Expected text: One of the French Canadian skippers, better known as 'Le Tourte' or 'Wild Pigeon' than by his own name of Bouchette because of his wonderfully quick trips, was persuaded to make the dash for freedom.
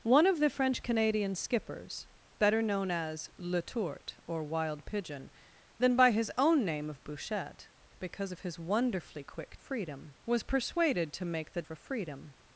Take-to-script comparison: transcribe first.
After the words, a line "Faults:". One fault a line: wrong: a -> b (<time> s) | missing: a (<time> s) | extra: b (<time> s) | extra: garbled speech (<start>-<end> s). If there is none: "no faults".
One of the French Canadian skippers, better known as 'Le Tourte' or 'Wild Pigeon' than by his own name of Bouchette because of his wonderfully quick freedom, was persuaded to make the for freedom.
Faults:
wrong: trips -> freedom (9.6 s)
missing: dash (11.6 s)